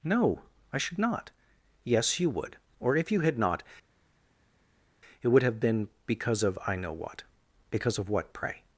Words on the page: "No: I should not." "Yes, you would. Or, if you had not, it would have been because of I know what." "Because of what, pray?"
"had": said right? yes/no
yes